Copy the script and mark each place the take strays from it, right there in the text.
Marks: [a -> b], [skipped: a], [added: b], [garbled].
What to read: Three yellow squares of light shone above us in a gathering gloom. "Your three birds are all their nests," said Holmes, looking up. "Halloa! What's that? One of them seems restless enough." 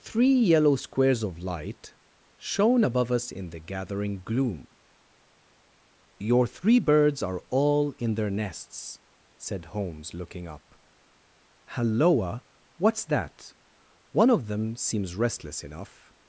Three yellow squares of light shone above us in [a -> the] gathering gloom. "Your three birds are all [added: in] their nests," said Holmes, looking up. "Halloa! What's that? One of them seems restless enough."